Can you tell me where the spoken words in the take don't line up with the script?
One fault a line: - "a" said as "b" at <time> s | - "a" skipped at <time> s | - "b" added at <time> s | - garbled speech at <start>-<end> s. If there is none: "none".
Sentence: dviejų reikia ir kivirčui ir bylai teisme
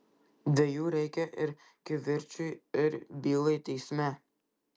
none